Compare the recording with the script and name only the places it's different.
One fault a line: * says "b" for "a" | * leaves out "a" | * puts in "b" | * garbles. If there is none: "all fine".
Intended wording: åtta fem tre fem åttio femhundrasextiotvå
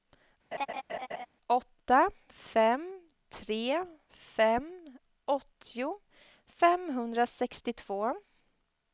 all fine